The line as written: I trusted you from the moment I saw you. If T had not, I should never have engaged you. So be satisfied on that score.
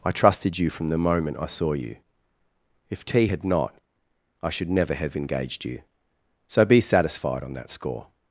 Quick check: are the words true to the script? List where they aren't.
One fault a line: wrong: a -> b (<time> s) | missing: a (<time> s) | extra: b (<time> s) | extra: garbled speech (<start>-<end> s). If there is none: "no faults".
no faults